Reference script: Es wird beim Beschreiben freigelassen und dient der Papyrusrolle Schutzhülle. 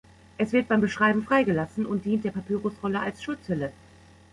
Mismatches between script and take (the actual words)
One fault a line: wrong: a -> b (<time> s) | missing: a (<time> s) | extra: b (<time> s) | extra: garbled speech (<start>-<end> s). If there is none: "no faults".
extra: als (3.0 s)